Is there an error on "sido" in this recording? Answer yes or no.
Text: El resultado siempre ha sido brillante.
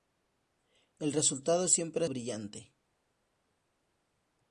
yes